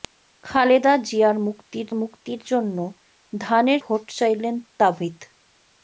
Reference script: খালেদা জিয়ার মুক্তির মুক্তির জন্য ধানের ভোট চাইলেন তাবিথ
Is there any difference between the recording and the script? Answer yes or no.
no